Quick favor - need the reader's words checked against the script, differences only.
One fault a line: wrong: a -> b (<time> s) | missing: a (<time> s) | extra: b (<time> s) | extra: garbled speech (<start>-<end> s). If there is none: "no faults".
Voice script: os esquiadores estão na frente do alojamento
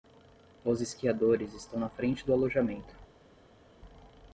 no faults